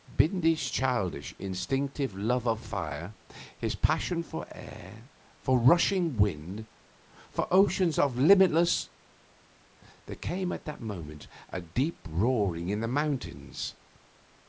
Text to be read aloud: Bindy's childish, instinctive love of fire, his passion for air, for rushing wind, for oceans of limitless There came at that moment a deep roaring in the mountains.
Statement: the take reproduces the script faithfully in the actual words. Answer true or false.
true